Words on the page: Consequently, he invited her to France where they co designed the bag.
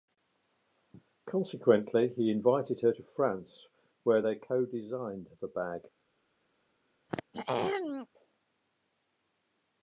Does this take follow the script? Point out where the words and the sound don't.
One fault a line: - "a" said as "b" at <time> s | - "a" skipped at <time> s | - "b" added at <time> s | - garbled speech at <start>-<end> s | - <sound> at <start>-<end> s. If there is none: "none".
- throat clearing at 7.1-8.1 s